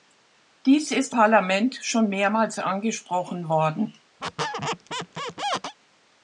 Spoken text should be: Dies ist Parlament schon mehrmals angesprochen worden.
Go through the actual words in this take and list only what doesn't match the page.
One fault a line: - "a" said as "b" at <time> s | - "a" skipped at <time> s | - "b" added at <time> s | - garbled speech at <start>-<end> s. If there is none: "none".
none